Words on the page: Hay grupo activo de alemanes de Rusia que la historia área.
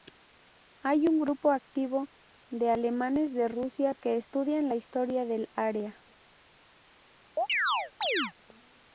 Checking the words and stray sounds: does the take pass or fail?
fail